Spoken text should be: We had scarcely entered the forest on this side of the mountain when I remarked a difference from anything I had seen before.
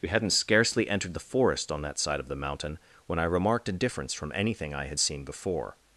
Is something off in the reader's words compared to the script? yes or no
yes